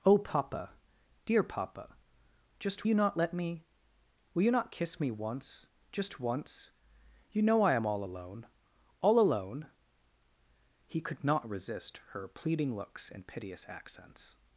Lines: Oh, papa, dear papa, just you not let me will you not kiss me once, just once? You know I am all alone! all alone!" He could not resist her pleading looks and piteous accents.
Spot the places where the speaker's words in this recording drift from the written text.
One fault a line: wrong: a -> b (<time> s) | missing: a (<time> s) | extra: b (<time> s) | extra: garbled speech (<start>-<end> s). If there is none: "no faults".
no faults